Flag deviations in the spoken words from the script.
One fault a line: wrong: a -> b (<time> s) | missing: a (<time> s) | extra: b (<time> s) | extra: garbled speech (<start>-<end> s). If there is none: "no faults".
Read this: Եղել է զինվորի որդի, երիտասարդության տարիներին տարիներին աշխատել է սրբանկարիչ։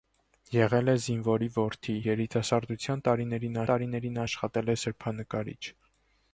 no faults